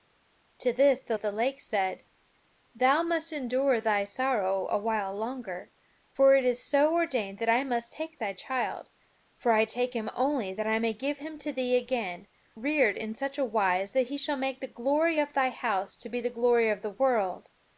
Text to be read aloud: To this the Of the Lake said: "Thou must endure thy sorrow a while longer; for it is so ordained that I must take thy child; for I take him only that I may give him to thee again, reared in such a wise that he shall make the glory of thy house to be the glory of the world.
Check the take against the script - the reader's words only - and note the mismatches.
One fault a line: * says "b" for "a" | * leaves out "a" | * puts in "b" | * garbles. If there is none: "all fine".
all fine